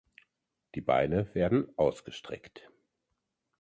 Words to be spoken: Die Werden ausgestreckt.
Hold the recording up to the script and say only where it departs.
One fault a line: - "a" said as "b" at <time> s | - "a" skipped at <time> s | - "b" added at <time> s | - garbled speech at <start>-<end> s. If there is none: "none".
- "Beine" added at 0.8 s